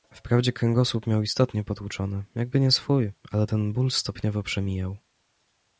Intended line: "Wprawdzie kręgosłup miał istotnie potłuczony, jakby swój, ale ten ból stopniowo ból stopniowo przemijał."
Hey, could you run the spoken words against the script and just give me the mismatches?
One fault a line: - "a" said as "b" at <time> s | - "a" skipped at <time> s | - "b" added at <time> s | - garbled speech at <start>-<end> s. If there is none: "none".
- "nie" added at 2.6 s
- "ból stopniowo" skipped at 4.4 s